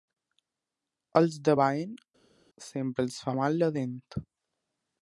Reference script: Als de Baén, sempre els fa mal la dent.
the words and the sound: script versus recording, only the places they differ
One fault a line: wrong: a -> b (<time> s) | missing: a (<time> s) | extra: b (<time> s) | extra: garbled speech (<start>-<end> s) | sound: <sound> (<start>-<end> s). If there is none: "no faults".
no faults